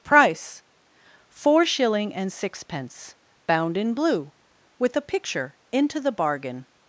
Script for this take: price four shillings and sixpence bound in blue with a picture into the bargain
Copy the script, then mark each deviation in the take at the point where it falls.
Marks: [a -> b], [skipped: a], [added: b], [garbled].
price four [shillings -> shilling] and sixpence bound in blue with a picture into the bargain